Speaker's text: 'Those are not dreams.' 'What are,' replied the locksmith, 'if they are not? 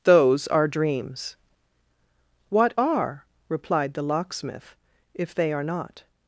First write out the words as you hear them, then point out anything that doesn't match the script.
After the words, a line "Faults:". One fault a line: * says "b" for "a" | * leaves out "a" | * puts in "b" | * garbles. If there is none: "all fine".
'Those are dreams.' 'What are,' replied the locksmith, 'if they are not?
Faults:
* leaves out "not"